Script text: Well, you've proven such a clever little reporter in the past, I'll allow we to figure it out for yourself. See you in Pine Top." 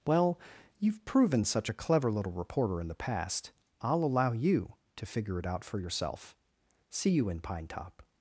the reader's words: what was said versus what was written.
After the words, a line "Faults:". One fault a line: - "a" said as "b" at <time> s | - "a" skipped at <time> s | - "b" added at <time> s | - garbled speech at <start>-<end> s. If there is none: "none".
Well, you've proven such a clever little reporter in the past, I'll allow you to figure it out for yourself. See you in Pine Top."
Faults:
- "we" said as "you" at 4.3 s